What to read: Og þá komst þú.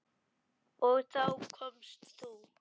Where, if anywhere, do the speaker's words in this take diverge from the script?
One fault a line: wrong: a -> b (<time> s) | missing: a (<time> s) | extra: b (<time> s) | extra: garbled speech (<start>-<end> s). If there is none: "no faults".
no faults